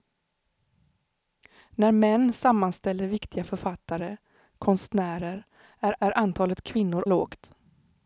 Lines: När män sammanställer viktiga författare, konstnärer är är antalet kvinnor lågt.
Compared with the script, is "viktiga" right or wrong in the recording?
right